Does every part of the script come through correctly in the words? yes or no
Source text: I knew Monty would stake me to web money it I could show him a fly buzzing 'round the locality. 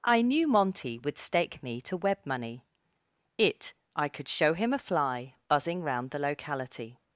yes